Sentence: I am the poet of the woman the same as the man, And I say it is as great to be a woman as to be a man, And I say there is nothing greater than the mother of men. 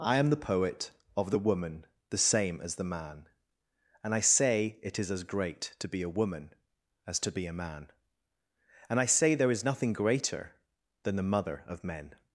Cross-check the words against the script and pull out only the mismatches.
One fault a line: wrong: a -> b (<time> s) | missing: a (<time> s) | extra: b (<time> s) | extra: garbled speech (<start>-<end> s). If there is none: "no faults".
no faults